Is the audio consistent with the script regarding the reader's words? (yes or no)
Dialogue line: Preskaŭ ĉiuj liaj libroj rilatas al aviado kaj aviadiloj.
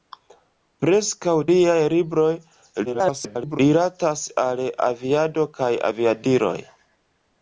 no